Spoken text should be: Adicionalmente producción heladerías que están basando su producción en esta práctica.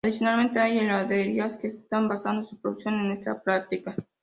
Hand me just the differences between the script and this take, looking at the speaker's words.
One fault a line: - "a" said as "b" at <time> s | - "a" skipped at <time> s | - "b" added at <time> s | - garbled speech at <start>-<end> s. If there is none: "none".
- "producción" said as "hay" at 0.6 s